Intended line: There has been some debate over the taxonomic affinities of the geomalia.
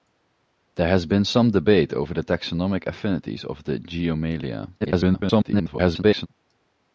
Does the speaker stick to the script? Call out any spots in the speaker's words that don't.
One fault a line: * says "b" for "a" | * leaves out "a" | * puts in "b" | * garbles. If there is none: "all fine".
* garbles